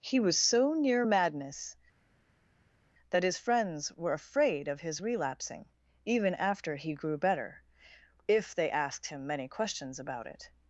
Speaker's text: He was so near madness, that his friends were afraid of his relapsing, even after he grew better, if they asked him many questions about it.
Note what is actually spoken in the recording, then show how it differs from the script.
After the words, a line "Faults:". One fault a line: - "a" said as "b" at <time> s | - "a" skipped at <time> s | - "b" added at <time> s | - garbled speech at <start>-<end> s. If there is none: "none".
He was so near madness, that his friends were afraid of his relapsing, even after he grew better, if they asked him many questions about it.
Faults:
none